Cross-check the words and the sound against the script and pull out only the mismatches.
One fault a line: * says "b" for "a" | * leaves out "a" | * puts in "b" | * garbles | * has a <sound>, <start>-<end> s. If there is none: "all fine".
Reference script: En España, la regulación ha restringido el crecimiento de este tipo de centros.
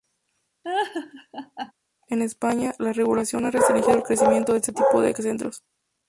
* has a laugh, 0.6-1.7 s